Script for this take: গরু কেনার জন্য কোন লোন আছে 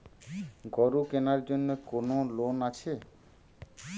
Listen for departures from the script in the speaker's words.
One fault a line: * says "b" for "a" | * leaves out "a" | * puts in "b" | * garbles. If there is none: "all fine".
all fine